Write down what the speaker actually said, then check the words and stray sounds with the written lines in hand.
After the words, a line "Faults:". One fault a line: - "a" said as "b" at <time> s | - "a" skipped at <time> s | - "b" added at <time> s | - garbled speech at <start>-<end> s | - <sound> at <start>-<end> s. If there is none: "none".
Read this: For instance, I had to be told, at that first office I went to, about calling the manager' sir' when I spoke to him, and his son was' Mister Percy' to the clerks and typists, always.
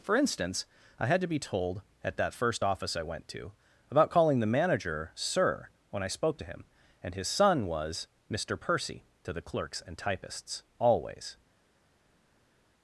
For instance, I had to be told, at that first office I went to, about calling the manager' sir' when I spoke to him, and his son was' Mister Percy' to the clerks and typists, always.
Faults:
none